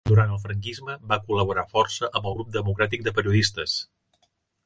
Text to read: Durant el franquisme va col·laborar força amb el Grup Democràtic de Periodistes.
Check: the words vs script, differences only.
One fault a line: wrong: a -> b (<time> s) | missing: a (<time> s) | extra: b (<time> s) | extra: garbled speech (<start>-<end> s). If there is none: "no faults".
no faults